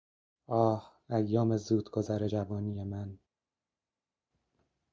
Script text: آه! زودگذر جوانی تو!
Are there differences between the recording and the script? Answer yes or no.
yes